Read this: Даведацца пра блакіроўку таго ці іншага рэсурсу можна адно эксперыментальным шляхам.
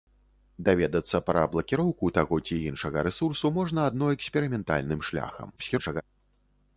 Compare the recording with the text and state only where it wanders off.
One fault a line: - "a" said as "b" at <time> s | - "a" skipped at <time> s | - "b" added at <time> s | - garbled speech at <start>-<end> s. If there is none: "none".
- garbled speech at 5.6-6.0 s